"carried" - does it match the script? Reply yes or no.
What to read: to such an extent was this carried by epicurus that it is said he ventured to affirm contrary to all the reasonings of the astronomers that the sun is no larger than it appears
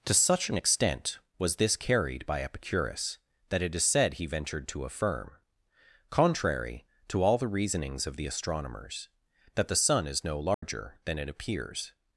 yes